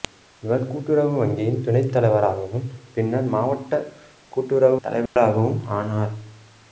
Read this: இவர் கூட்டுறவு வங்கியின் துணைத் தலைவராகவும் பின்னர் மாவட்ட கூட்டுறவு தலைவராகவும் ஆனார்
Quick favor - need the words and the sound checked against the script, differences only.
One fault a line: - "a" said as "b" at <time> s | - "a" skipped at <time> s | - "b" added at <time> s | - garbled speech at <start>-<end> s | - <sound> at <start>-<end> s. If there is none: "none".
- dropout at 5.1-5.2 s